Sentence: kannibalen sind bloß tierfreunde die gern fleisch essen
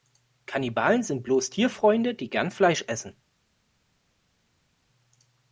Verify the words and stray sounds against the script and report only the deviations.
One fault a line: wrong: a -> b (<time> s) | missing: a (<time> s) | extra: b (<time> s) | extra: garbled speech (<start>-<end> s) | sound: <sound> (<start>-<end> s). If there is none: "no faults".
no faults